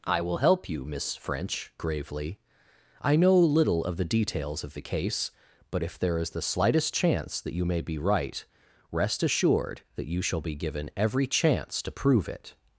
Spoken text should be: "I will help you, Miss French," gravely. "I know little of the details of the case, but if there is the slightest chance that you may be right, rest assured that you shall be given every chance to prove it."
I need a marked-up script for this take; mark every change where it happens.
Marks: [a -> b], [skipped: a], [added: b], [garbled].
"I will help you, Miss French," gravely. "I know little of the details of the case, but if there is the slightest chance that you may be right, rest assured that you shall be given every chance to prove it."